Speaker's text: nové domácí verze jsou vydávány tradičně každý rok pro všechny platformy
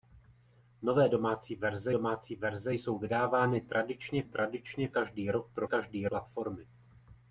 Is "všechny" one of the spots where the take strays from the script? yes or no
yes